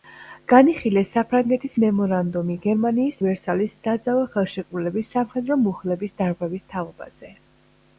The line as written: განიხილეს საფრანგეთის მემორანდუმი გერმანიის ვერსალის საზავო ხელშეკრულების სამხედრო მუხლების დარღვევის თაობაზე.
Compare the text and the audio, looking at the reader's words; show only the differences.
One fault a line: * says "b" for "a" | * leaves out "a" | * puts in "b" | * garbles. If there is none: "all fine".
all fine